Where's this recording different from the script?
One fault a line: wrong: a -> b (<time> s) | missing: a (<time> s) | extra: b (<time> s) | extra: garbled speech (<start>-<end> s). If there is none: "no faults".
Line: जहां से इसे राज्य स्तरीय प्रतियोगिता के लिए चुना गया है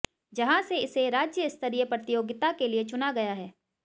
no faults